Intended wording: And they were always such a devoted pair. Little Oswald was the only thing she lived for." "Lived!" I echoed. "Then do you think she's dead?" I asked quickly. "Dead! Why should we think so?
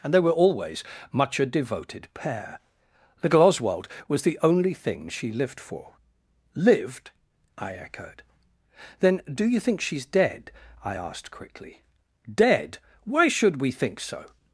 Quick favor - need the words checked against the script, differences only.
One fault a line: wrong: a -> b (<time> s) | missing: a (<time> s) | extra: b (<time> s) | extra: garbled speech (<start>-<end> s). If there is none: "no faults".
wrong: such -> much (1.1 s)